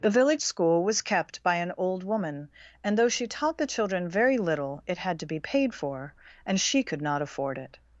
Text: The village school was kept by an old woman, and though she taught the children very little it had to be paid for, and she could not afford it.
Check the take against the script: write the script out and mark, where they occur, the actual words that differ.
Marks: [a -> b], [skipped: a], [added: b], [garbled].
The village school was kept by an old woman, and though she taught the children very little it had to be paid for, and she could not afford it.